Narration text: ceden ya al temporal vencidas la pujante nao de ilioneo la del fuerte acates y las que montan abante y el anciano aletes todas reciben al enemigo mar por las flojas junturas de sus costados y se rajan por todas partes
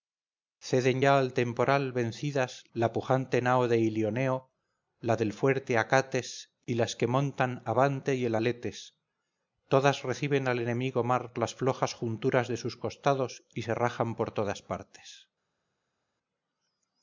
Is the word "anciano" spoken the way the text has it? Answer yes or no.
no